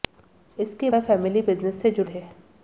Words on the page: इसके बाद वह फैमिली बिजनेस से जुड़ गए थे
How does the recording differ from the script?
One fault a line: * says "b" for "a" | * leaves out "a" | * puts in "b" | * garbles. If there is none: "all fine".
* leaves out "बाद"
* leaves out "गए"